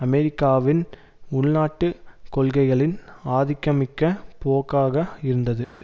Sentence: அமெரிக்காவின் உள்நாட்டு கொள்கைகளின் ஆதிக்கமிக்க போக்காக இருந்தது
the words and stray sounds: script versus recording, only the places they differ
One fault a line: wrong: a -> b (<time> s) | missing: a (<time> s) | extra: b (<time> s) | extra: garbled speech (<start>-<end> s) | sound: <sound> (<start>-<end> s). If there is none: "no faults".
no faults